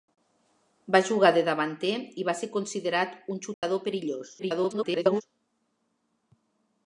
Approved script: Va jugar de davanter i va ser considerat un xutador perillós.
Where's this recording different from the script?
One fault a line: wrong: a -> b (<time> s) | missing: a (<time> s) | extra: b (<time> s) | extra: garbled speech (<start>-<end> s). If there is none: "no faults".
extra: garbled speech (4.4-5.2 s)